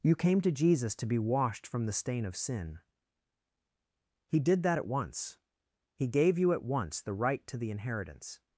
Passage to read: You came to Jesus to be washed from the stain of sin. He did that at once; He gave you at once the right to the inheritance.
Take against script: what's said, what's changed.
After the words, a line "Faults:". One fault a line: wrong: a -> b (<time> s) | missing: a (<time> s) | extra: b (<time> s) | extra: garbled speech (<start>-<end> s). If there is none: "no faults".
You came to Jesus to be washed from the stain of sin. He did that at once; He gave you at once the right to the inheritance.
Faults:
no faults